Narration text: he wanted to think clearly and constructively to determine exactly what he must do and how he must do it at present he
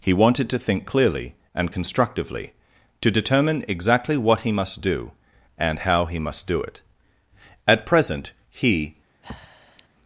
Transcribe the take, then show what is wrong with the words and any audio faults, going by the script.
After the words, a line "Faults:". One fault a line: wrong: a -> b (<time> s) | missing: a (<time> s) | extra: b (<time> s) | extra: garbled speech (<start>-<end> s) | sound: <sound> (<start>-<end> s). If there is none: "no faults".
he wanted to think clearly and constructively to determine exactly what he must do and how he must do it at present he
Faults:
sound: breath (9.2-9.9 s)